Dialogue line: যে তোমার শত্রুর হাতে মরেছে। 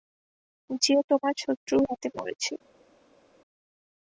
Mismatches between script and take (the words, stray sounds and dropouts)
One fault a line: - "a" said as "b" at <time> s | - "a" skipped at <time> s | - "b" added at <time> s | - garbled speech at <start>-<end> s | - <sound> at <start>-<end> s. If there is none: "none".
none